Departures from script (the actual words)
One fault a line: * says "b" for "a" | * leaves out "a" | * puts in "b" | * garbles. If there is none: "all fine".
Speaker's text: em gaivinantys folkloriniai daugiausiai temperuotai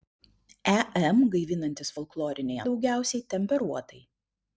all fine